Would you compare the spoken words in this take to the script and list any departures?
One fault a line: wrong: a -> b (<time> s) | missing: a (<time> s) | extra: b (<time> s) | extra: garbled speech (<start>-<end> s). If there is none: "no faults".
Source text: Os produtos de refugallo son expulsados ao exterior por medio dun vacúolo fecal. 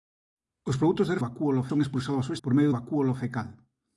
wrong: refugallo -> vacúolo (1.2 s)
missing: exterior (2.4 s)
missing: dun (2.8 s)